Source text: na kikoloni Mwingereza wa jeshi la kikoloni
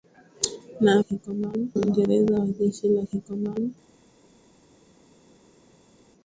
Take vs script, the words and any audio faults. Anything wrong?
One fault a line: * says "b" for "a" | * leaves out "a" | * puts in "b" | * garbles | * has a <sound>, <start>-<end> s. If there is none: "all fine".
all fine